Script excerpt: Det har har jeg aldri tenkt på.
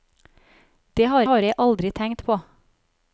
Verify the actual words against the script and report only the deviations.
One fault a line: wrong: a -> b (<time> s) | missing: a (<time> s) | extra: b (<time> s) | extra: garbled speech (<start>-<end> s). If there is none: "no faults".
no faults